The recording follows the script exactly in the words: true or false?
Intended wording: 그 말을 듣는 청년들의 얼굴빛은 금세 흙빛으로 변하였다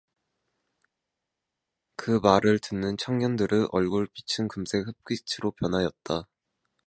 true